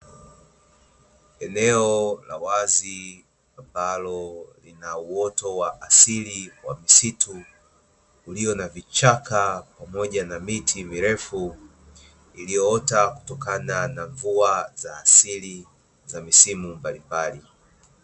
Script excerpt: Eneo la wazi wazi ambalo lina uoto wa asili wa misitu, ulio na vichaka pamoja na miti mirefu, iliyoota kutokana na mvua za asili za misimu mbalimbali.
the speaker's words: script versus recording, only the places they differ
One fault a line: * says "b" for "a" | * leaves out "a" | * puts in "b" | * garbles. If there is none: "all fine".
* leaves out "wazi"